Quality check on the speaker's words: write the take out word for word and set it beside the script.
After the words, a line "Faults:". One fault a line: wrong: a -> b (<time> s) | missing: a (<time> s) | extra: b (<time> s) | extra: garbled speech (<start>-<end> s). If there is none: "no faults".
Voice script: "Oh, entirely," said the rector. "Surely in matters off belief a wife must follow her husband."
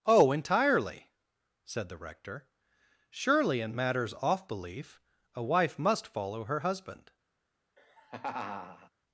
"Oh, entirely," said the rector. "Surely in matters off belief a wife must follow her husband."
Faults:
no faults